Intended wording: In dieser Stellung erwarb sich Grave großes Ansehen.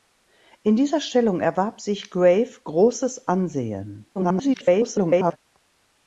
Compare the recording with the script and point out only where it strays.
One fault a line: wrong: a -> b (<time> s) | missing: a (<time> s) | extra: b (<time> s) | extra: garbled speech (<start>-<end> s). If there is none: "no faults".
extra: garbled speech (4.1-5.4 s)